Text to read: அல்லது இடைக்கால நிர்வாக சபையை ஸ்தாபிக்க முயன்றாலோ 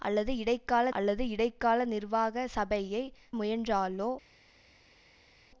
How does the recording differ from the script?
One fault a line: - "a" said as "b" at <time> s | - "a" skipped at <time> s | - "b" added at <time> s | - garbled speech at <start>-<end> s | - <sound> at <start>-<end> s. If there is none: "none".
- "அல்லது இடைக்கால" added at 0.9 s
- "ஸ்தாபிக்க" skipped at 3.0 s